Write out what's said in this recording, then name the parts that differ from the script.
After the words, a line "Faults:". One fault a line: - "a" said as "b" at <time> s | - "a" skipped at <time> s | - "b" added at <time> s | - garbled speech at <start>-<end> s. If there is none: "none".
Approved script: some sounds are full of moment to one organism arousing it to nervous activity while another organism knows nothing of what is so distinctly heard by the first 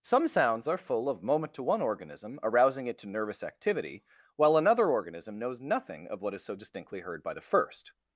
some sounds are full of moment to one organism arousing it to nervous activity while another organism knows nothing of what is so distinctly heard by the first
Faults:
none